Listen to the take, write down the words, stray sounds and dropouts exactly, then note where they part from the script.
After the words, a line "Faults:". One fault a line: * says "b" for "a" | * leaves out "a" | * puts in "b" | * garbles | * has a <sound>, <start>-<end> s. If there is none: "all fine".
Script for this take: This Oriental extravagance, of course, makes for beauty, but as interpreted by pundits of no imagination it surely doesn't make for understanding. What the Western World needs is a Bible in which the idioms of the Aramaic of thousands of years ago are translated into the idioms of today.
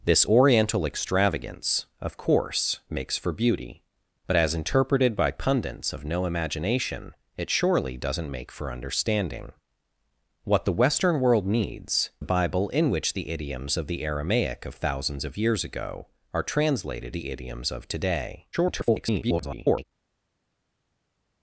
This Oriental extravagance, of course, makes for beauty, but as interpreted by pundits of no imagination it surely doesn't make for understanding. What the Western World needs a Bible in which the idioms of the Aramaic of thousands of years ago are translated the idioms of today. [garbled]
Faults:
* leaves out "is"
* leaves out "into"
* garbles